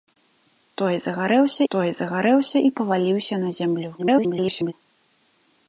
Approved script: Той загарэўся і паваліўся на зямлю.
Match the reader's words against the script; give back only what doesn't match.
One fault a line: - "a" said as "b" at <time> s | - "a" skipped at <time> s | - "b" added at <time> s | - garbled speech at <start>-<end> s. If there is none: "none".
- "той загарэўся" added at 1.7 s
- garbled speech at 4.0-4.7 s